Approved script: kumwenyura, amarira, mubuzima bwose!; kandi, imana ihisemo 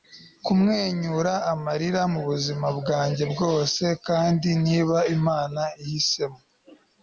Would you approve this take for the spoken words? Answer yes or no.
no